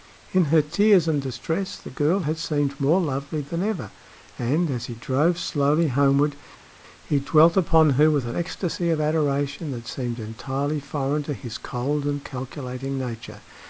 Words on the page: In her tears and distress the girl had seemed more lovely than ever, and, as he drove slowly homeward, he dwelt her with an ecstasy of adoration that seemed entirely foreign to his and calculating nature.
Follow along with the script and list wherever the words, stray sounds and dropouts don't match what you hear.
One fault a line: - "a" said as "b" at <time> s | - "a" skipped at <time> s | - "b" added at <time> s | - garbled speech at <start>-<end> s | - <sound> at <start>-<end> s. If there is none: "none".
- "upon" added at 7.6 s
- "cold" added at 11.6 s